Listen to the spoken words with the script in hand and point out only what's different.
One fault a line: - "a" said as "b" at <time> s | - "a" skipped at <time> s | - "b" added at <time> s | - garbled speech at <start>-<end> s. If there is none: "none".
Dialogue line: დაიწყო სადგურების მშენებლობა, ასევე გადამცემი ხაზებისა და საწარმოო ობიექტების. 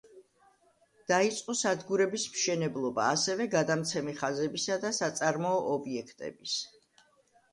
none